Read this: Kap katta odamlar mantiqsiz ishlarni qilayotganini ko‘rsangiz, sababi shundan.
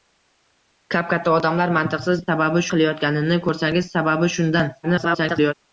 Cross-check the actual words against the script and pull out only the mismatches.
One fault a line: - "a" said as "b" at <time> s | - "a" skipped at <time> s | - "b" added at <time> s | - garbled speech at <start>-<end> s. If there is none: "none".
- "ishlarni" said as "sababi" at 2.3 s
- garbled speech at 4.8-5.5 s